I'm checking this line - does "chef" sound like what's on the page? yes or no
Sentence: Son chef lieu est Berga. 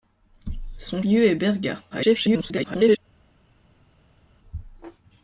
no